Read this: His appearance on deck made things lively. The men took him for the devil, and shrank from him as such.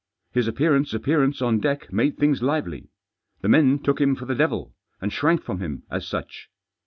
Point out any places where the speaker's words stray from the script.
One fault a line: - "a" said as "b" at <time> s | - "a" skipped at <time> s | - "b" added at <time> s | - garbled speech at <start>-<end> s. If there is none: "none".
- "appearance" added at 0.9 s